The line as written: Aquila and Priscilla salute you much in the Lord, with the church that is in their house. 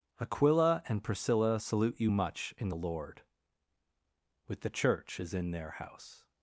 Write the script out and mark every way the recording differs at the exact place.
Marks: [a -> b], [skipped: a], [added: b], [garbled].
Aquila and Priscilla salute you much in the Lord, with the church [skipped: that] is in their house.